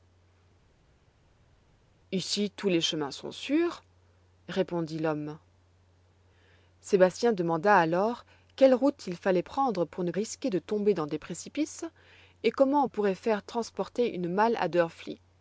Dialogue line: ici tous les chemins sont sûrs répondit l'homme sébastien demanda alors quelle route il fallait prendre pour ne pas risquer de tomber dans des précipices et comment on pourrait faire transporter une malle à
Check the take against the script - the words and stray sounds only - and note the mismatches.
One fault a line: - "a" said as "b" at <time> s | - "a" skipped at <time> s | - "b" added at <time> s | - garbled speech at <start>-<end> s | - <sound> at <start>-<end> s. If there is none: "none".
- "pas" skipped at 10.1 s